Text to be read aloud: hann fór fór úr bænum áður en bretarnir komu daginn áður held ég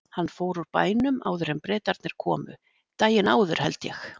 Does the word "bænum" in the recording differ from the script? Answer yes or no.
no